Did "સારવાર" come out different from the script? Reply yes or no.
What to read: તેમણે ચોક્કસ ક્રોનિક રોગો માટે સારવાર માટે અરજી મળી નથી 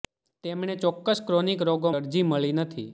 yes